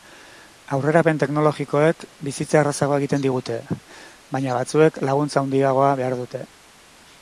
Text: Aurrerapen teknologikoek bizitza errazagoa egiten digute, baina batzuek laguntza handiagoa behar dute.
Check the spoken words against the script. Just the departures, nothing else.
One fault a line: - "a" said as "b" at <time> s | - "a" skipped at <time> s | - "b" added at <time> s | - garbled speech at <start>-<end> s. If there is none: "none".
none